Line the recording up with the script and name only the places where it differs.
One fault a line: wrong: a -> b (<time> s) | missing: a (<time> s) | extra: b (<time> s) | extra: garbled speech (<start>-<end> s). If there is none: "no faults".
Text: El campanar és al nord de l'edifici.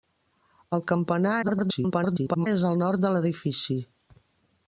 extra: garbled speech (1.4-2.5 s)